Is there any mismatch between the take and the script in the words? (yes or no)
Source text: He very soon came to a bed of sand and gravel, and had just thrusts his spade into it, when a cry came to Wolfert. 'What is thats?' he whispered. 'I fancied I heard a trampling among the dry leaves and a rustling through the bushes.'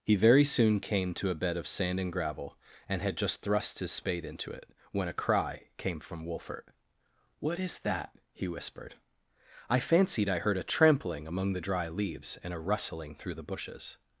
yes